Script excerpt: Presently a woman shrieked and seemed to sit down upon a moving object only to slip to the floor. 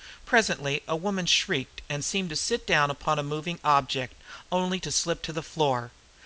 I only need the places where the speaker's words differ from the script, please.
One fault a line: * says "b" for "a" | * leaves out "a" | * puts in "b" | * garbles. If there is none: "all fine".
all fine